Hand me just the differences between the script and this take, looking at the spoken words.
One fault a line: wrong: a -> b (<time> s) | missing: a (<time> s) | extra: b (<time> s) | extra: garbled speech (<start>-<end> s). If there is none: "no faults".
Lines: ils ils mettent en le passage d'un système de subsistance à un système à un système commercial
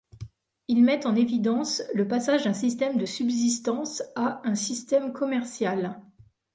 missing: ils (0.8 s)
extra: évidence (1.1 s)
missing: à un système (5.1 s)